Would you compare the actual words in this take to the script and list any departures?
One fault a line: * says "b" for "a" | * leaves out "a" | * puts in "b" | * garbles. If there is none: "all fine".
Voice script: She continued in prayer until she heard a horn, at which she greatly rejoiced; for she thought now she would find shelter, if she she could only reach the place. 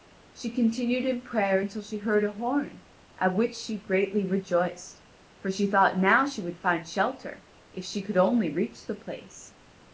* leaves out "she"